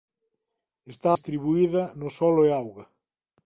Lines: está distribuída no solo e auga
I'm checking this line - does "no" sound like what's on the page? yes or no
yes